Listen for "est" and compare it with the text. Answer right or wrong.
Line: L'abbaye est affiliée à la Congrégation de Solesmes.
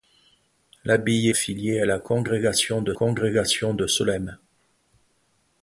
wrong